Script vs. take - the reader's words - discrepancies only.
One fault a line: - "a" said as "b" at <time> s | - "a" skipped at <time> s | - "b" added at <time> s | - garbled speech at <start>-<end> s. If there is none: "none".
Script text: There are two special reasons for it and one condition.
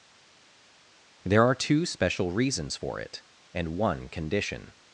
none